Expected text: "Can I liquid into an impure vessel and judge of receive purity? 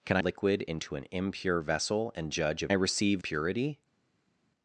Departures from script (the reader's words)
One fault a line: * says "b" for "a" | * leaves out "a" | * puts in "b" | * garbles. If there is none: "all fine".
all fine